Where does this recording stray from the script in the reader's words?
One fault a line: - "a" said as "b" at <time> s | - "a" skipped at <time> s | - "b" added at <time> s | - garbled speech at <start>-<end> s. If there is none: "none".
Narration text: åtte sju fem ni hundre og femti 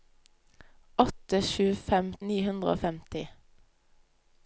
none